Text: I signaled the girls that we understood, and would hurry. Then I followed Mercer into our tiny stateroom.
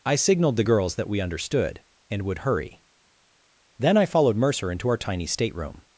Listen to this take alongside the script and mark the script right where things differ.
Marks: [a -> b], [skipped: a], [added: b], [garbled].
I signaled the girls that we understood, and would hurry. Then I followed Mercer into our tiny stateroom.